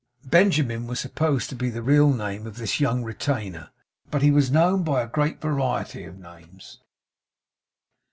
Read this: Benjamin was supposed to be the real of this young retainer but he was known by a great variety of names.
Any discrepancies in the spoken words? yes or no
yes